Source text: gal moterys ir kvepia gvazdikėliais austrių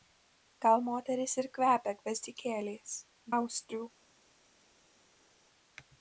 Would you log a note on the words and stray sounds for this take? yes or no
no